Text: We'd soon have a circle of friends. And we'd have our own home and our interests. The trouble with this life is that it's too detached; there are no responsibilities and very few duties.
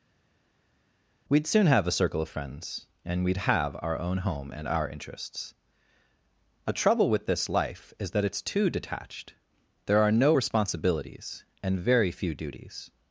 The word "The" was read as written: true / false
false